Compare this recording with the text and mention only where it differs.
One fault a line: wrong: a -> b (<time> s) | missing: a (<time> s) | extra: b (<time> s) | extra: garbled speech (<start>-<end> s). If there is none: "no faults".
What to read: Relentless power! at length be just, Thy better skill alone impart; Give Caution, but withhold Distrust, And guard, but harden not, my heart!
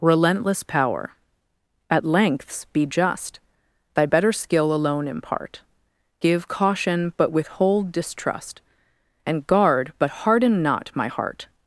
wrong: length -> lengths (2.0 s)